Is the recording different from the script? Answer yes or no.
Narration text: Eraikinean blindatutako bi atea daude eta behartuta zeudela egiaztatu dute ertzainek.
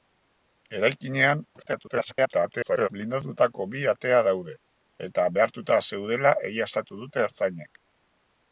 yes